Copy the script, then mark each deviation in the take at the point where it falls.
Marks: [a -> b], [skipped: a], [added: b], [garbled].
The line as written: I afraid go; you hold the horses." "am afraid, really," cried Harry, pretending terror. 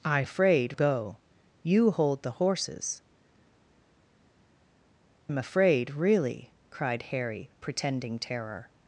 I afraid go; you hold the horses." "am afraid, really," cried Harry, pretending terror.